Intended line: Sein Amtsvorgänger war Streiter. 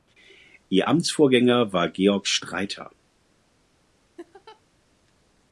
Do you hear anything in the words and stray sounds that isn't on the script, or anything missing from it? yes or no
yes